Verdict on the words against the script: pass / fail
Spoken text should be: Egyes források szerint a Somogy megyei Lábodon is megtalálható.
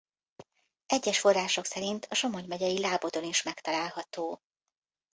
pass